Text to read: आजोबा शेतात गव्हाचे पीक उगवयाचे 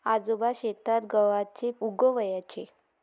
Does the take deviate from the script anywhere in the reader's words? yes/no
yes